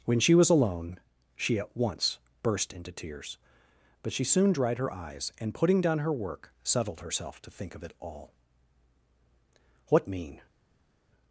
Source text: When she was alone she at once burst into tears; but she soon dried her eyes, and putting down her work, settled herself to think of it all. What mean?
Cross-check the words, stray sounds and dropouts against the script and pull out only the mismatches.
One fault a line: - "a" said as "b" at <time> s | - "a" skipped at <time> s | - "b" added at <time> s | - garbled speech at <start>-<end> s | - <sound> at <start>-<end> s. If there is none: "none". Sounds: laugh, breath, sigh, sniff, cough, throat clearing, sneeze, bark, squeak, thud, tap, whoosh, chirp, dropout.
none